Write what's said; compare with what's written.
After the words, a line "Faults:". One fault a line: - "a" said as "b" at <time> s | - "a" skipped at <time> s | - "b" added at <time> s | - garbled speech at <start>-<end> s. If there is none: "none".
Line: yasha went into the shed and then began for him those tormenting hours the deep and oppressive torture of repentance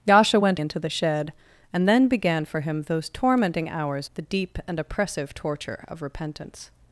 yasha went into the shed and then began for him those tormenting hours the deep and oppressive torture of repentance
Faults:
none